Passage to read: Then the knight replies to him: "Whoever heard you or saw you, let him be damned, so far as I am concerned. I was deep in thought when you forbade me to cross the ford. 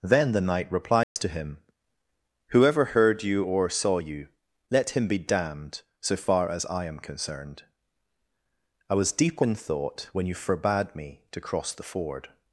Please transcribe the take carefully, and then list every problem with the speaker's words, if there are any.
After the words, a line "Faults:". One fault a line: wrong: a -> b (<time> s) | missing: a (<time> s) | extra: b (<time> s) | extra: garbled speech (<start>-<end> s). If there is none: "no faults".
Then the knight replies to him: "Whoever heard you or saw you, let him be damned, so far as I am concerned. I was deep in thought when you forbade me to cross the ford.
Faults:
no faults